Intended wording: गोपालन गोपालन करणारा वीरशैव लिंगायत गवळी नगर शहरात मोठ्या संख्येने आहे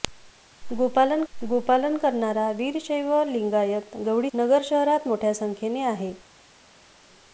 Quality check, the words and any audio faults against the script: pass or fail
pass